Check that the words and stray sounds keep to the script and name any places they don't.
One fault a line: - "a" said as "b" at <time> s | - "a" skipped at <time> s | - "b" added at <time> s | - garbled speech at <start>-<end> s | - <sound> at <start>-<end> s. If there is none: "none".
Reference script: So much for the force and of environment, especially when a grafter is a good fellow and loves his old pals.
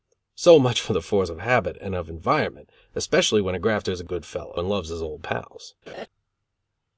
- "of habit" added at 1.3 s
- laugh at 5.9-6.1 s